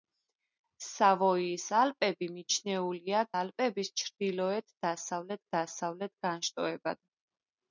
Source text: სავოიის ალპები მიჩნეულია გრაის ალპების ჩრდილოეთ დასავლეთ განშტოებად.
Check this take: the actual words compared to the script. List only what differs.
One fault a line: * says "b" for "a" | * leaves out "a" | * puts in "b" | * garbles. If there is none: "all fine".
* leaves out "გრაის"
* puts in "დასავლეთ"